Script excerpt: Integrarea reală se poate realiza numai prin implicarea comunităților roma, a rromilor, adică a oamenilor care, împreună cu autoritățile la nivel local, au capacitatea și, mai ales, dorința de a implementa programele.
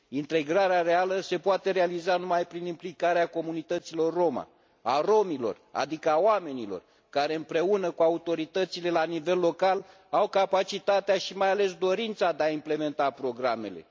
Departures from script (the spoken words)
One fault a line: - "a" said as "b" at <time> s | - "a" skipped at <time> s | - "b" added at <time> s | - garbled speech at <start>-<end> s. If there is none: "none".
none